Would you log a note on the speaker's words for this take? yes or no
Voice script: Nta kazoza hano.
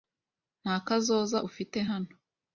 yes